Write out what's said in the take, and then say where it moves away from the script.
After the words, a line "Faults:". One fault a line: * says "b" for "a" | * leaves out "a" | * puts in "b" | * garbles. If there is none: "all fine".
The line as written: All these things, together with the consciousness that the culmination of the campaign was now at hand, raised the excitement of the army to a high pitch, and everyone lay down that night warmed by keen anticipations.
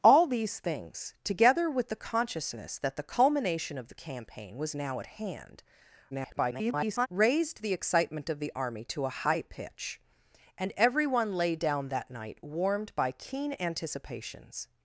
All these things, together with the consciousness that the culmination of the campaign was now at hand, [garbled] raised the excitement of the army to a high pitch, and everyone lay down that night warmed by keen anticipations.
Faults:
* garbles